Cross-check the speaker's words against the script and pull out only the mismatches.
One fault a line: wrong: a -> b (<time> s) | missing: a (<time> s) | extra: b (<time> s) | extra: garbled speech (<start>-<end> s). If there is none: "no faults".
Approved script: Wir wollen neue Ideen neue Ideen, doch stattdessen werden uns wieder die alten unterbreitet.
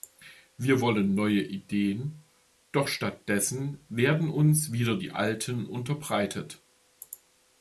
missing: neue Ideen (2.2 s)